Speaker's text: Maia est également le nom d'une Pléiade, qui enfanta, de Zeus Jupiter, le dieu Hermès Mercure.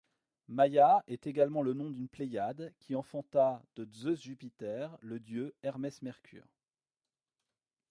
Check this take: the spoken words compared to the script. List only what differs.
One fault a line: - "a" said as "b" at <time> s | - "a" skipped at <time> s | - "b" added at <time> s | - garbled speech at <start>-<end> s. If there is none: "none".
none